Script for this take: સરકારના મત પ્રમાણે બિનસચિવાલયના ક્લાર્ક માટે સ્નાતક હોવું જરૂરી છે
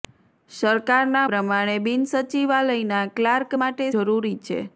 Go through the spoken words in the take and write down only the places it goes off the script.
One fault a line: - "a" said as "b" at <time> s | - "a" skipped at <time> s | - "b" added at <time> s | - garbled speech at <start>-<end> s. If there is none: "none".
- "મત" skipped at 1.2 s
- "સ્નાતક હોવું" skipped at 3.9 s